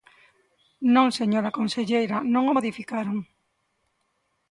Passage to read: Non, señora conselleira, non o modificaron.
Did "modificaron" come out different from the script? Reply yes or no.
no